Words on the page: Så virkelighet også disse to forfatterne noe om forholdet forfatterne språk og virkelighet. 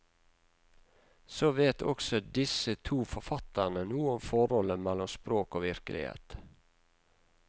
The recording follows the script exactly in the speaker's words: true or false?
false